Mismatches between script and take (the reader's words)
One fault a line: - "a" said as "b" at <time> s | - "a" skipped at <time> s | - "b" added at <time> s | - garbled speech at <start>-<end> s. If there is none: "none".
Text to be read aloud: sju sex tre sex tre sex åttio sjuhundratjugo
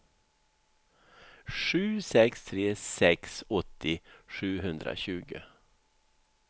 - "tre sex" skipped at 3.4 s